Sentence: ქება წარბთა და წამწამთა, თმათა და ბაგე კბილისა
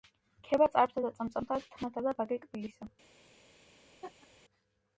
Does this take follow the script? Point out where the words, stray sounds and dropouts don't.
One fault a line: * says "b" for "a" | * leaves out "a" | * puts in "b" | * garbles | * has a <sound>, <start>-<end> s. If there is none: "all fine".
* has a laugh, 4.0-4.3 s